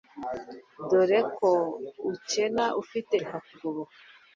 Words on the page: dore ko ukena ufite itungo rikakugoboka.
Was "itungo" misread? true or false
true